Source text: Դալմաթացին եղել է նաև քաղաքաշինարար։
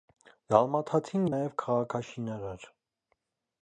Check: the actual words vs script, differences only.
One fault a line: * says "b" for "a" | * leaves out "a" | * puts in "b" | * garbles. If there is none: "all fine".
* leaves out "եղել"